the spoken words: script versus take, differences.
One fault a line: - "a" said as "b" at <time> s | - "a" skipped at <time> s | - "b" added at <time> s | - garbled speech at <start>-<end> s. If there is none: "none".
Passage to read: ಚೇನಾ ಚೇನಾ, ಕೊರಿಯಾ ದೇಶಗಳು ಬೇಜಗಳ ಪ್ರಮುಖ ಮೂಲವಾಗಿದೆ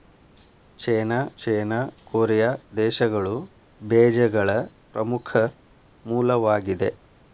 none